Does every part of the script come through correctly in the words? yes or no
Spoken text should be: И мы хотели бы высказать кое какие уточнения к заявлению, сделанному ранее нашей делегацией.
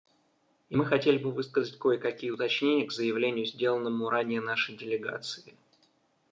yes